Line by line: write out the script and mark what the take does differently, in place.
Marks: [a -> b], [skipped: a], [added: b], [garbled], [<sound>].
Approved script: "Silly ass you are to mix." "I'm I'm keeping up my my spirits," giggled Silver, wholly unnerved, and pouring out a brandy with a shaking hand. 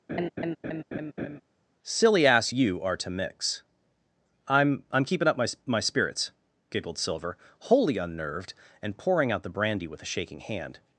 [laugh] "Silly ass you are to mix." "I'm I'm keeping up my my spirits," giggled Silver, wholly unnerved, and pouring out [a -> the] brandy with a shaking hand.